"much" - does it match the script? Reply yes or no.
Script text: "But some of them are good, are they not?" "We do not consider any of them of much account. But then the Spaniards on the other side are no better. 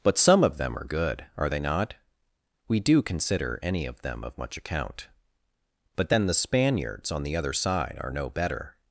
yes